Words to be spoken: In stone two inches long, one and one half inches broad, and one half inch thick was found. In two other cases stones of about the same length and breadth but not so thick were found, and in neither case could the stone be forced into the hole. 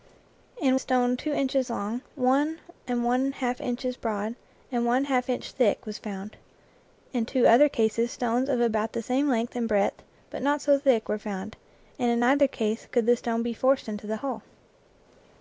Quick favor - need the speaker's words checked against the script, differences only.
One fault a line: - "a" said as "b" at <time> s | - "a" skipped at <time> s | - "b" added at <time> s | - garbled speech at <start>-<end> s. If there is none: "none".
none